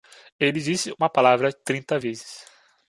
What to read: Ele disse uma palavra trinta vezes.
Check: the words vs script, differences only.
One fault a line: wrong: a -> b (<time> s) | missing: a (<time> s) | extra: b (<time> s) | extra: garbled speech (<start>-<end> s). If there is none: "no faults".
no faults